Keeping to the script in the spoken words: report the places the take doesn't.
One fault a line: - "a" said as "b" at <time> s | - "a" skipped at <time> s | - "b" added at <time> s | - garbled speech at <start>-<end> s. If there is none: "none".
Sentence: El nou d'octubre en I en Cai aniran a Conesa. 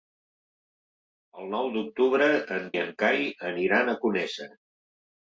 none